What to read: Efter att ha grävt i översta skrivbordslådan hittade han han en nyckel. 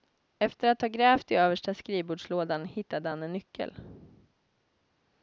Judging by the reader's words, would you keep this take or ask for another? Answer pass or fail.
fail